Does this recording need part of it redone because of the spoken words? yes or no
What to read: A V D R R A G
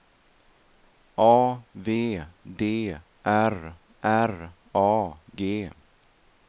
no